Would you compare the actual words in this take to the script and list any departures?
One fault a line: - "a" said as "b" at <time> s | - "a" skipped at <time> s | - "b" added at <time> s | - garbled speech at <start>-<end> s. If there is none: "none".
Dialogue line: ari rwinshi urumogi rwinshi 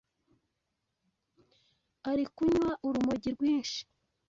- "rwinshi" said as "kunywa" at 2.4 s